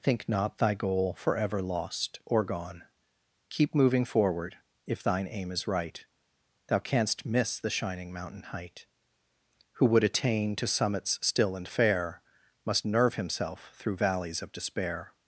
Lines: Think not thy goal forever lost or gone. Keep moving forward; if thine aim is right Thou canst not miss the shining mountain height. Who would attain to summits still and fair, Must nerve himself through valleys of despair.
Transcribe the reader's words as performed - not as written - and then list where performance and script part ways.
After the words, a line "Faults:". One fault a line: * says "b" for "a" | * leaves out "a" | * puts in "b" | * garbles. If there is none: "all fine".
Think not thy goal forever lost or gone. Keep moving forward; if thine aim is right Thou canst miss the shining mountain height. Who would attain to summits still and fair, Must nerve himself through valleys of despair.
Faults:
* leaves out "not"